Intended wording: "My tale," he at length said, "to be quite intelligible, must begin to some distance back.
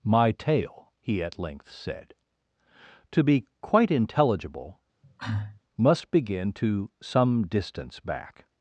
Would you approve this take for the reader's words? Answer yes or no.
yes